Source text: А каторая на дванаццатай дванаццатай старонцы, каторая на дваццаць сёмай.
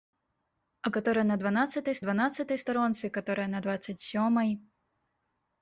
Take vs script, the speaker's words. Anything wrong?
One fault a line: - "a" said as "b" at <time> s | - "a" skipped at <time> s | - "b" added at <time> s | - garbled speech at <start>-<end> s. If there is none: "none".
none